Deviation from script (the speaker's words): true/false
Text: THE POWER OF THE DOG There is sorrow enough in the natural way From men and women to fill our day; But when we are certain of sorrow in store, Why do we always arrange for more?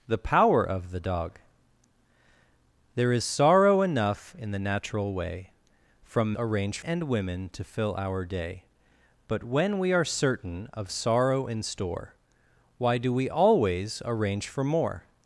true